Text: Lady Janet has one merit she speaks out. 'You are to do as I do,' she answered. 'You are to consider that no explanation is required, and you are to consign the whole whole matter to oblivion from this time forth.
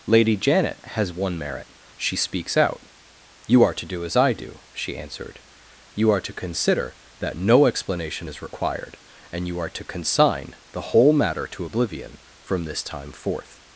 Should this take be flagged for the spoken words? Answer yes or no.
yes